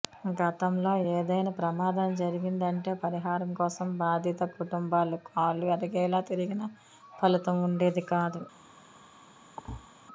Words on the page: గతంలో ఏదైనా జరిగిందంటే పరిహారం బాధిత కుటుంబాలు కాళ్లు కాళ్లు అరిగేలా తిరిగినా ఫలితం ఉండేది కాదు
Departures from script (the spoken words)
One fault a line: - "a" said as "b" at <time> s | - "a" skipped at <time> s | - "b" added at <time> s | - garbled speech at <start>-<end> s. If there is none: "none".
- "ప్రమాదం" added at 1.6 s
- "కోసం" added at 3.5 s
- "కాళ్లు" skipped at 5.7 s